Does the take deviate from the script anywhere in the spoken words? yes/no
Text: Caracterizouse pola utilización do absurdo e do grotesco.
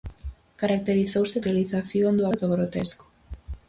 yes